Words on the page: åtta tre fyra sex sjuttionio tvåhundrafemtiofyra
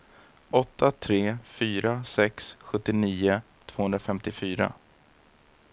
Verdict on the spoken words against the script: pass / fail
pass